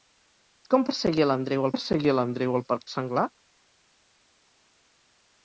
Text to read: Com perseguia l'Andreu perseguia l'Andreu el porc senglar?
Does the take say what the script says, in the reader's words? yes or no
yes